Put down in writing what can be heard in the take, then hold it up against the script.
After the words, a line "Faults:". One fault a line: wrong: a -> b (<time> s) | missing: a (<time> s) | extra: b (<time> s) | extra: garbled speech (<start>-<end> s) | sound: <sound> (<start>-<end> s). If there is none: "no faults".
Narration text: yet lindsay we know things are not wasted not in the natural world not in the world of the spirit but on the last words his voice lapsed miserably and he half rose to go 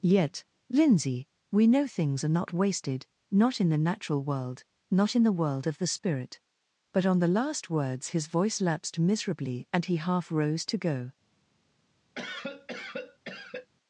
yet lindsay we know things are not wasted not in the natural world not in the world of the spirit but on the last words his voice lapsed miserably and he half rose to go
Faults:
sound: cough (12.1-13.7 s)